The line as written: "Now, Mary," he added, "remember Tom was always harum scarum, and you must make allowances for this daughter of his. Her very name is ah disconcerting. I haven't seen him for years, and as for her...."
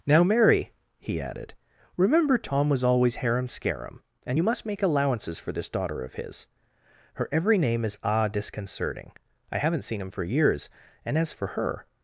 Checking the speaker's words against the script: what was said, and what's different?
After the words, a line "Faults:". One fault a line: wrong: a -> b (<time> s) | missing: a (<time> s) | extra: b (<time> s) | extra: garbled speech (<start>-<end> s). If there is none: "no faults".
"Now, Mary," he added, "remember Tom was always harum scarum, and you must make allowances for this daughter of his. Her every name is ah disconcerting. I haven't seen him for years, and as for her...."
Faults:
wrong: very -> every (7.3 s)